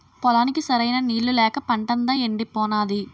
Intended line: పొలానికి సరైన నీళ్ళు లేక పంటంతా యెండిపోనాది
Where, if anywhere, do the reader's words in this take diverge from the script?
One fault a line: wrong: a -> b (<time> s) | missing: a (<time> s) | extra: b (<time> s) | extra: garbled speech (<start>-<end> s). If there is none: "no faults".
no faults